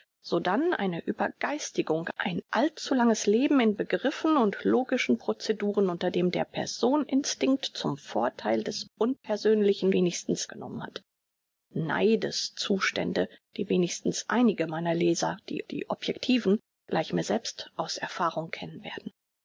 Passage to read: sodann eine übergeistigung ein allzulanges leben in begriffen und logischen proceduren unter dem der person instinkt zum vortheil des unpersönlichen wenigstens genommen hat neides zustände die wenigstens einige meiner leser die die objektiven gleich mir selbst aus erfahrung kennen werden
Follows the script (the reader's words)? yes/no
yes